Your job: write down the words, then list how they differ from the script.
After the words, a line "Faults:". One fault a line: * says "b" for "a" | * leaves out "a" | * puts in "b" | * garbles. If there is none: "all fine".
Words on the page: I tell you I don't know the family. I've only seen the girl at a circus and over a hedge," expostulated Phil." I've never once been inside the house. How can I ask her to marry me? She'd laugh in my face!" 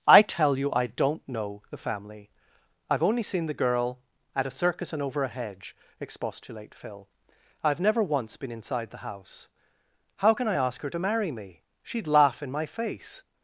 I tell you I don't know the family. I've only seen the girl at a circus and over a hedge," expostulate Phil." I've never once been inside the house. How can I ask her to marry me? She'd laugh in my face!"
Faults:
* says "expostulate" for "expostulated"